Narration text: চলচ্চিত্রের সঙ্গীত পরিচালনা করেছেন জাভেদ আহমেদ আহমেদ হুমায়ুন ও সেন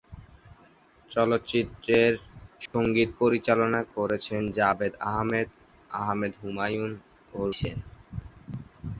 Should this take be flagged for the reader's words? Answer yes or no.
no